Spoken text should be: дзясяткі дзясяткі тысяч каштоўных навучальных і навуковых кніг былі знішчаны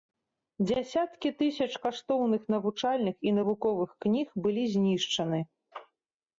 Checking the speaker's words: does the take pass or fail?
fail